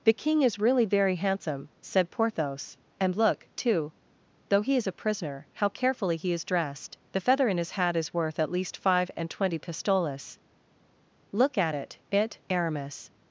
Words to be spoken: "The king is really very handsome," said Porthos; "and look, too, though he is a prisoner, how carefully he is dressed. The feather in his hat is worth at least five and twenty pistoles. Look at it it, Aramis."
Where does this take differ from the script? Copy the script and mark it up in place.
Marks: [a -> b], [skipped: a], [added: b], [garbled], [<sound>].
"The king is really very handsome," said Porthos; "and look, too, though he is a prisoner, how carefully he is dressed. The feather in his hat is worth at least five and twenty pistoles. Look at it it, Aramis."